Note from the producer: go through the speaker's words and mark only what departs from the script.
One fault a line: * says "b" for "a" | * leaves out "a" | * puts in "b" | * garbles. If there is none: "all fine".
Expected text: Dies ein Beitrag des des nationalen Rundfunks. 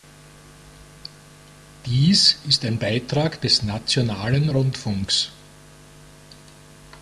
* puts in "ist"
* leaves out "des"